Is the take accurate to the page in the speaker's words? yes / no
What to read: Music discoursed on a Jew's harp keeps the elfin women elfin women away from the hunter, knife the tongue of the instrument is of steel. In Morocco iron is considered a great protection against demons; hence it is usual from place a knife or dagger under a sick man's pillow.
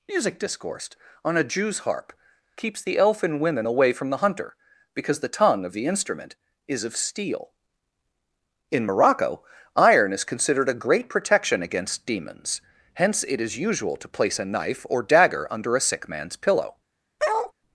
no